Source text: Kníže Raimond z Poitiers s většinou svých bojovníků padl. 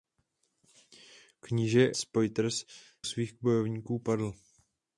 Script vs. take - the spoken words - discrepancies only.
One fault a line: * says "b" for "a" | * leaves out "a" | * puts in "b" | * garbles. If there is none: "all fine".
* leaves out "Raimond"
* leaves out "s většinou"